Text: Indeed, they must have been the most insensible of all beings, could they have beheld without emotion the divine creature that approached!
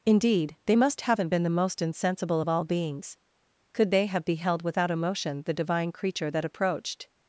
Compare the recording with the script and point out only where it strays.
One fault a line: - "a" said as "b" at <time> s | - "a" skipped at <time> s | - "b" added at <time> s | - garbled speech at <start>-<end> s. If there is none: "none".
- "have" said as "haven't" at 1.0 s